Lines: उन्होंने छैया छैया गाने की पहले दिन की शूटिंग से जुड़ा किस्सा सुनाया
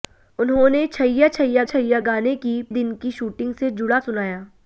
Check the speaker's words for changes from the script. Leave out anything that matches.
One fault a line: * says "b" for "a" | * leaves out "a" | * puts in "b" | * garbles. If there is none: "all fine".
* puts in "छैया"
* leaves out "पहले"
* leaves out "किस्सा"